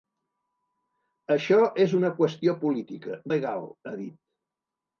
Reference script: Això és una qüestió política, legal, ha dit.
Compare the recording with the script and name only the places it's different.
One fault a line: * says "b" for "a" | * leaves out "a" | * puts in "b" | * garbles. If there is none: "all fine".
all fine